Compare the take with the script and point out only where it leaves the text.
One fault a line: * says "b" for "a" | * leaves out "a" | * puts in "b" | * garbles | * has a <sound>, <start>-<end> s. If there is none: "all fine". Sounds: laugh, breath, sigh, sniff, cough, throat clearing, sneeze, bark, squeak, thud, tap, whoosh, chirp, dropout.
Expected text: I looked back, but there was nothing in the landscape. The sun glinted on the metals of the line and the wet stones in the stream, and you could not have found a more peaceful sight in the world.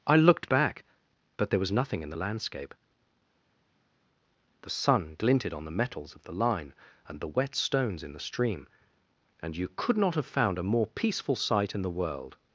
all fine